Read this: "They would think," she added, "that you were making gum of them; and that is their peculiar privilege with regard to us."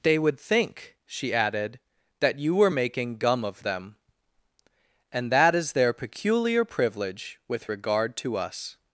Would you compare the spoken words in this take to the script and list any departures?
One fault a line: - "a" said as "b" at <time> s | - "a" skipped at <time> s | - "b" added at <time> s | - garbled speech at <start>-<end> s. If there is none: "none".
none